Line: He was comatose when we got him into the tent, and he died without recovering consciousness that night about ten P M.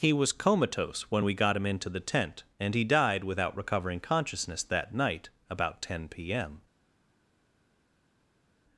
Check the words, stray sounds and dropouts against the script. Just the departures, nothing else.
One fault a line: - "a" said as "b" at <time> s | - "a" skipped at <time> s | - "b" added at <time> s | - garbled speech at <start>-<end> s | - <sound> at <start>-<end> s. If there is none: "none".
none